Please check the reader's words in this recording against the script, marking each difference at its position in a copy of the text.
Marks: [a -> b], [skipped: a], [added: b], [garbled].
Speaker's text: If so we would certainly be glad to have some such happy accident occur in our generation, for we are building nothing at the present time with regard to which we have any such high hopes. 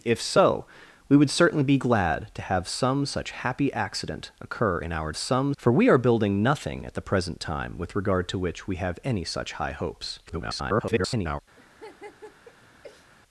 If so we would certainly be glad to have some such happy accident occur in our [generation, -> some] for we are building nothing at the present time with regard to which we have any such high hopes. [garbled]